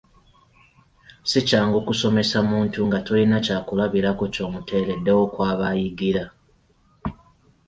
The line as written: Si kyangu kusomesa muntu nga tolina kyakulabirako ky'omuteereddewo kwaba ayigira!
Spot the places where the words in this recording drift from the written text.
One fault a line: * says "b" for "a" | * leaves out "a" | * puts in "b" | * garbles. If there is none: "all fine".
all fine